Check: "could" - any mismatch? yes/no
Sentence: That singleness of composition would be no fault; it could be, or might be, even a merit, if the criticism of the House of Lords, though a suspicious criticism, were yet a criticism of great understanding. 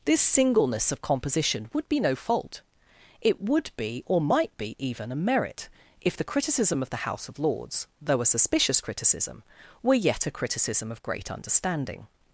yes